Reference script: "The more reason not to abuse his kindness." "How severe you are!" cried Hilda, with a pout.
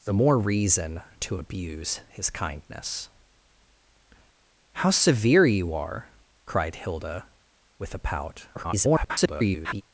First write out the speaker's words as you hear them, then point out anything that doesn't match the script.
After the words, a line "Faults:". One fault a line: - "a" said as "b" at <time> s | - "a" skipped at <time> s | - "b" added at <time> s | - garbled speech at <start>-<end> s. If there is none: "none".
"The more reason to abuse his kindness." "How severe you are!" cried Hilda, with a pout. [garbled]
Faults:
- "not" skipped at 1.0 s
- garbled speech at 8.5-9.8 s